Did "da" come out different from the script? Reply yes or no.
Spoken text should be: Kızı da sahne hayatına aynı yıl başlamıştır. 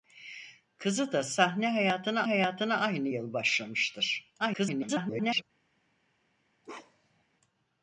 no